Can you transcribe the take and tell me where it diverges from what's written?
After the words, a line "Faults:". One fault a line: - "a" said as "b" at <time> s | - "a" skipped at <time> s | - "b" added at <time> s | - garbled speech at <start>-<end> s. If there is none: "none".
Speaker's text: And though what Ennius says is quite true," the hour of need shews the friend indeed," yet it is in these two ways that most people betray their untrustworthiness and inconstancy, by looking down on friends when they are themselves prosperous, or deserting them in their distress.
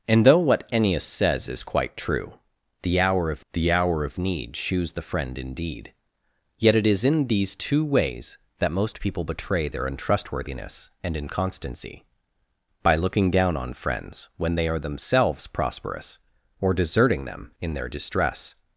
And though what Ennius says is quite true," the hour of the hour of need shews the friend indeed," yet it is in these two ways that most people betray their untrustworthiness and inconstancy, by looking down on friends when they are themselves prosperous, or deserting them in their distress.
Faults:
- "the hour of" added at 3.5 s